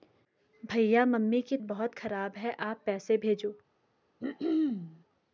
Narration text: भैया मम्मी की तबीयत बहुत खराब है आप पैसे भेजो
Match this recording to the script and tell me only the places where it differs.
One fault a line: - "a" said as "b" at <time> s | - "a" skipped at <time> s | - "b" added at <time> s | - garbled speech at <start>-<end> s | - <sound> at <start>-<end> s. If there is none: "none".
- "तबीयत" skipped at 1.6 s
- throat clearing at 4.2-5.0 s